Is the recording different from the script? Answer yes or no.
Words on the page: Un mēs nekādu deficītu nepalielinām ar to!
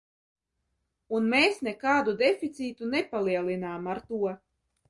no